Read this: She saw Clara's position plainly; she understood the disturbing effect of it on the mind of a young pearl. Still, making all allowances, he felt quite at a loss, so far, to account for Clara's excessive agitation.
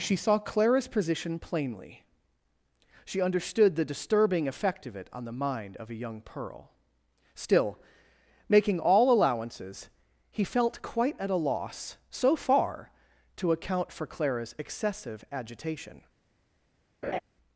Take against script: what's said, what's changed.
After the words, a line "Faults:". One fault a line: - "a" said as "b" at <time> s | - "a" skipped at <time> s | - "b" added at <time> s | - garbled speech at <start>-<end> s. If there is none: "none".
She saw Clara's position plainly; she understood the disturbing effect of it on the mind of a young pearl. Still, making all allowances, he felt quite at a loss, so far, to account for Clara's excessive agitation.
Faults:
none